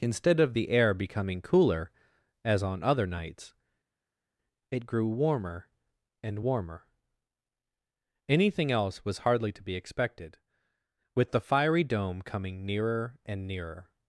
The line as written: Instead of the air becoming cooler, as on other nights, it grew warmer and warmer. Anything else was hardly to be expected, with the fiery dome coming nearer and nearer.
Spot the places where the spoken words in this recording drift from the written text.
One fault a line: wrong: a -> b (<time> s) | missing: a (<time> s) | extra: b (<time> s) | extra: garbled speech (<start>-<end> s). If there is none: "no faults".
no faults